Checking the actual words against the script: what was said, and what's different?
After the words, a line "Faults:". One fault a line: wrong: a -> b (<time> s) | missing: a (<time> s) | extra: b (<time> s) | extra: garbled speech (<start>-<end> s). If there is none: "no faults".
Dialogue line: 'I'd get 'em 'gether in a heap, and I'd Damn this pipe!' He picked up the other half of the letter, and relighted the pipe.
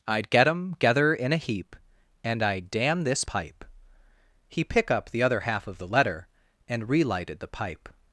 'I'd get 'em 'gether in a heap, and I'd Damn this pipe!' He pick up the other half of the letter, and relighted the pipe.
Faults:
wrong: picked -> pick (4.6 s)